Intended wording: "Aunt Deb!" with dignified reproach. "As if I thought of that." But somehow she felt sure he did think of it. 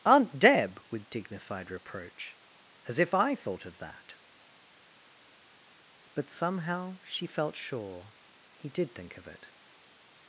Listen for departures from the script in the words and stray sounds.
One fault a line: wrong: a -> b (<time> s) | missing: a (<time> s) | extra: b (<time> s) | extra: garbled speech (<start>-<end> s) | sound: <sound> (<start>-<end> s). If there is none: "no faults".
no faults